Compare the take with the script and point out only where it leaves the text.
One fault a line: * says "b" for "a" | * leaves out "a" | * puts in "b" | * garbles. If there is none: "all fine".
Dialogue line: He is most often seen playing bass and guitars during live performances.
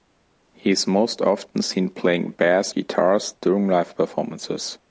* leaves out "and"